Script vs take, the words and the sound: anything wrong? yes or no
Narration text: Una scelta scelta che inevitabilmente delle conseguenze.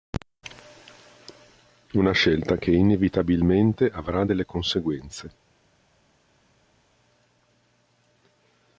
yes